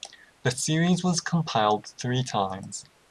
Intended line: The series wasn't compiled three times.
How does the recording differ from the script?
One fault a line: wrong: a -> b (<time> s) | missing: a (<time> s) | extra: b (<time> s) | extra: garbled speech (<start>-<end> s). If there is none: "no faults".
wrong: wasn't -> was (1.0 s)